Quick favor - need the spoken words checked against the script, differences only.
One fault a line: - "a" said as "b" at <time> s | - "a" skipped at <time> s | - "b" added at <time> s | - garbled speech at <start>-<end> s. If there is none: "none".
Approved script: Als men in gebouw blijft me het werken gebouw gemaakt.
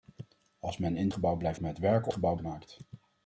none